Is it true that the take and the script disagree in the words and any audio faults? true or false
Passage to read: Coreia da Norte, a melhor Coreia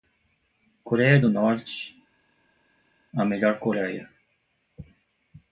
true